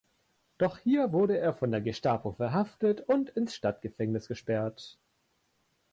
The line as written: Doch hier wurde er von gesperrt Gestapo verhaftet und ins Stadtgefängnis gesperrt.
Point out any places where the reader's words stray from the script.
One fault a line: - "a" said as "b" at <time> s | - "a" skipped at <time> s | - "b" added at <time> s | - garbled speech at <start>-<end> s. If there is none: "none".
- "gesperrt" said as "der" at 1.7 s